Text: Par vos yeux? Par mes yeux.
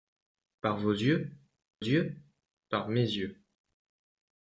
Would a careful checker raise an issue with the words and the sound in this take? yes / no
yes